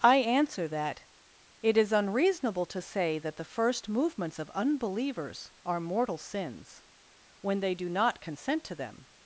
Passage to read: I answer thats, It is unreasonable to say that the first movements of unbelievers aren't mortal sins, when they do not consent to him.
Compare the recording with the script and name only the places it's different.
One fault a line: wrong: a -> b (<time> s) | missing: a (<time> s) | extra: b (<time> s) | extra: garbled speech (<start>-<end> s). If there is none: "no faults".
wrong: thats -> that (0.7 s)
wrong: aren't -> are (5.6 s)
wrong: him -> them (8.8 s)